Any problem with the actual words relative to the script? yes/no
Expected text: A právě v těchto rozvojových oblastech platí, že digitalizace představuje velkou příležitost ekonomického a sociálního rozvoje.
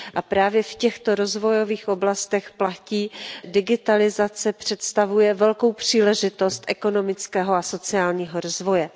yes